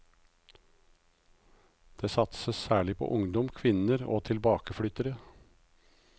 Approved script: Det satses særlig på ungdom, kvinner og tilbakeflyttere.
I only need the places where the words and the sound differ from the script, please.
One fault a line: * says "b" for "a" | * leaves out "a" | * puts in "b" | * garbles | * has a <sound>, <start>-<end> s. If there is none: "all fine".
all fine